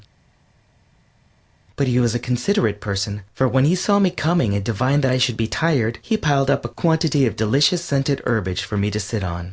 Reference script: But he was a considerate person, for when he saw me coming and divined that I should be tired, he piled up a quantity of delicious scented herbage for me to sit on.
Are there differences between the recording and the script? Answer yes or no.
no